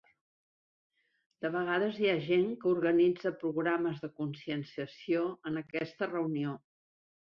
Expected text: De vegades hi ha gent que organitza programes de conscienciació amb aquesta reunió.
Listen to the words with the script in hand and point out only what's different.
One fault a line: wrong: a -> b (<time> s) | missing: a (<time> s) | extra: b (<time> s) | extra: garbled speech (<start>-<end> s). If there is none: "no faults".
wrong: amb -> en (5.5 s)